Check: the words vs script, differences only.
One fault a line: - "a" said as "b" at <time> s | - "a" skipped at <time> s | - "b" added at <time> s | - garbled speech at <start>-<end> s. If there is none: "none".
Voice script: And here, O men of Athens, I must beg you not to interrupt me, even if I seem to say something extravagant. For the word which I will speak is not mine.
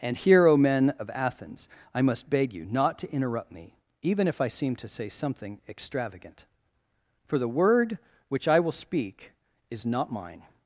none